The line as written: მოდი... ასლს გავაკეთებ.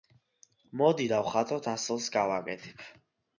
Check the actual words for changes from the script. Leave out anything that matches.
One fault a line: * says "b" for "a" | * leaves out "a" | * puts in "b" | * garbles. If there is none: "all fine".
* puts in "დავხატოთ"